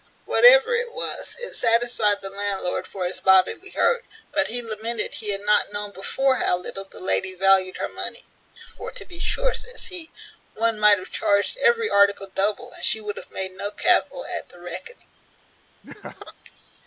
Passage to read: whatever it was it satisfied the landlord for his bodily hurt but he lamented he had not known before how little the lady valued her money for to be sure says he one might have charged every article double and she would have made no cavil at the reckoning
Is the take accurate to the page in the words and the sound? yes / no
no